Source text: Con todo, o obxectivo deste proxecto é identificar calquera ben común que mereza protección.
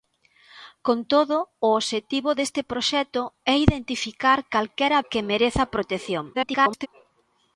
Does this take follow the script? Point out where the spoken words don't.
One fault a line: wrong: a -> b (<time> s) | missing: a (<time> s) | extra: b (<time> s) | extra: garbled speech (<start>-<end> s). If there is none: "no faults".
missing: ben común (5.0 s)
extra: garbled speech (6.3-6.9 s)